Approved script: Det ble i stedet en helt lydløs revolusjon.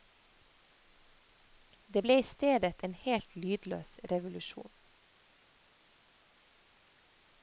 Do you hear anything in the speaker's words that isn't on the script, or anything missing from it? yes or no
no